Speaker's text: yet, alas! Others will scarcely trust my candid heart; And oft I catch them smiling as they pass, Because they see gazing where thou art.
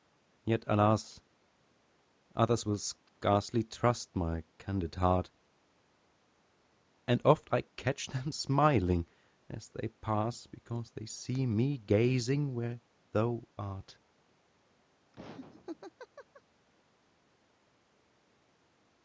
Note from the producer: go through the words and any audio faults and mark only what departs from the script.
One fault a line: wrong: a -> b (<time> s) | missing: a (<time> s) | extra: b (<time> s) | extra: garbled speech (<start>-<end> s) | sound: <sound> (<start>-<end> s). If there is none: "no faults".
extra: me (11.5 s)
sound: laugh (15.1-16.4 s)